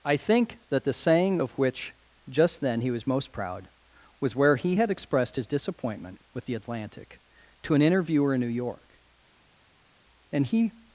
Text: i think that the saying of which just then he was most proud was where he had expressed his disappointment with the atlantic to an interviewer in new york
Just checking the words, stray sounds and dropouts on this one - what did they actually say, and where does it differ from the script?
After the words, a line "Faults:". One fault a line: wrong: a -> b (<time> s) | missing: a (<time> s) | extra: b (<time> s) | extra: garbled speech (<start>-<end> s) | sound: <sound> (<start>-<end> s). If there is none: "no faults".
i think that the saying of which just then he was most proud was where he had expressed his disappointment with the atlantic to an interviewer in new york and he
Faults:
extra: and he (10.3 s)